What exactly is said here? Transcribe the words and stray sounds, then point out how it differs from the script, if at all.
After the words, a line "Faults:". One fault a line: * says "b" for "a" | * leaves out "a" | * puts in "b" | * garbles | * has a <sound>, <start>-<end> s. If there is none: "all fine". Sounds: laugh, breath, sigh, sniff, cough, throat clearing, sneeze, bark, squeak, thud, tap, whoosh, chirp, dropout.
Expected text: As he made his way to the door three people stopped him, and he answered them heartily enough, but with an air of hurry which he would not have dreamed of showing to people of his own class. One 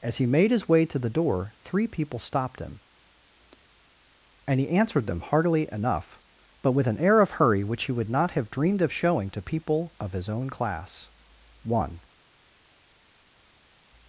As he made his way to the door three people stopped him, and he answered them heartily enough, but with an air of hurry which he would not have dreamed of showing to people of his own class. One
Faults:
all fine